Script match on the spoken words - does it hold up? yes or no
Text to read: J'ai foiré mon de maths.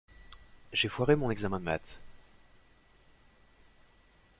no